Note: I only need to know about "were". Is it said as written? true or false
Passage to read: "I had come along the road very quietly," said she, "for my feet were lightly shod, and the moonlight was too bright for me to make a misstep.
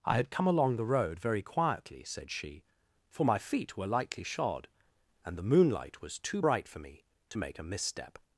true